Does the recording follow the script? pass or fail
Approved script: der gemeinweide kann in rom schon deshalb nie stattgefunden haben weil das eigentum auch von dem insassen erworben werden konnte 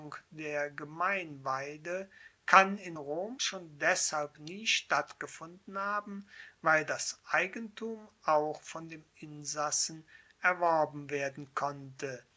pass